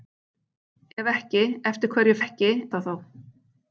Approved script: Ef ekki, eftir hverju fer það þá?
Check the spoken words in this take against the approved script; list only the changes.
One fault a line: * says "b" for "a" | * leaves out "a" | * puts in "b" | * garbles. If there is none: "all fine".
* says "ekki" for "fer"